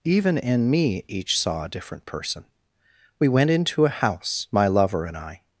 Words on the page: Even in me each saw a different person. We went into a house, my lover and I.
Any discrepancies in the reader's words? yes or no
no